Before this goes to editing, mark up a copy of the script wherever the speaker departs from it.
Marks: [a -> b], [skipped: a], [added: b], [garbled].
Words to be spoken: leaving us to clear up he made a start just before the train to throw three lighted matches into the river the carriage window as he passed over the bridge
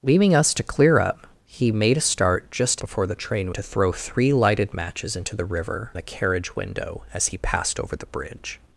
leaving us to clear up he made a start just before the train to throw three lighted matches into the river the carriage window as he passed over the bridge